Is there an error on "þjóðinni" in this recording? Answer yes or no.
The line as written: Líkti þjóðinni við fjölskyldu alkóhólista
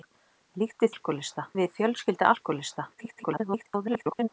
yes